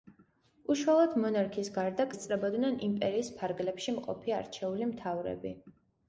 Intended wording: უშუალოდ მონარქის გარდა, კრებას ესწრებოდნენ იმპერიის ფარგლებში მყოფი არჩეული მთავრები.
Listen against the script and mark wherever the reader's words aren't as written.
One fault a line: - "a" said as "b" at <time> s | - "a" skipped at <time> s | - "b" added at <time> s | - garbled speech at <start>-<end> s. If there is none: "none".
- "კრებას" skipped at 2.1 s